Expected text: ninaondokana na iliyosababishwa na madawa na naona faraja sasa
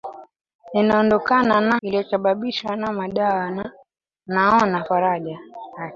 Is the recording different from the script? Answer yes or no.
no